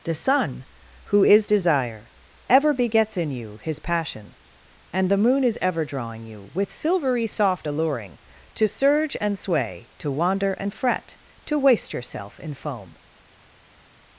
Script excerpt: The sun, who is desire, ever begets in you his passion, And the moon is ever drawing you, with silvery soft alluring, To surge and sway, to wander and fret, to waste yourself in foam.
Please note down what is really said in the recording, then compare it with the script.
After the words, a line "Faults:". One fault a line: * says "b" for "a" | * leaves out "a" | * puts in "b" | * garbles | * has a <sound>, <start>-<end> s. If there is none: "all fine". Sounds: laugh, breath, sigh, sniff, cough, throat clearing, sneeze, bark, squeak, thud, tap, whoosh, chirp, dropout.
The sun, who is desire, ever begets in you his passion, And the moon is ever drawing you, with silvery soft alluring, To surge and sway, to wander and fret, to waste yourself in foam.
Faults:
all fine